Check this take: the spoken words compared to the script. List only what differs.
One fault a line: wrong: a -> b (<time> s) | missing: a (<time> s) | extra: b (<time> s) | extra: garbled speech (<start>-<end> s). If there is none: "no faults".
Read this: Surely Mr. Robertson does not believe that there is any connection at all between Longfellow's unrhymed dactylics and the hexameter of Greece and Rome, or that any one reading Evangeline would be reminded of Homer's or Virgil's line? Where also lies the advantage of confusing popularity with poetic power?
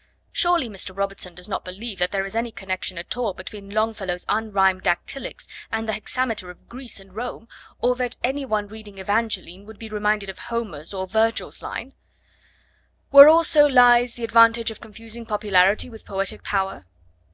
no faults